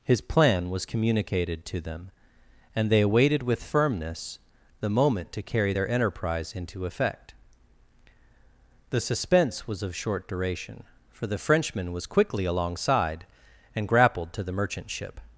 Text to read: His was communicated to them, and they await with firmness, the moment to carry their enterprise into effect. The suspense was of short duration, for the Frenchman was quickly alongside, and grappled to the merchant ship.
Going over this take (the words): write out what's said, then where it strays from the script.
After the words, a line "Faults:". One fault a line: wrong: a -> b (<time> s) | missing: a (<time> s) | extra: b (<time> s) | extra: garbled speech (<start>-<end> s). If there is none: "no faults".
His plan was communicated to them, and they awaited with firmness, the moment to carry their enterprise into effect. The suspense was of short duration, for the Frenchman was quickly alongside, and grappled to the merchant ship.
Faults:
extra: plan (0.2 s)
wrong: await -> awaited (3.0 s)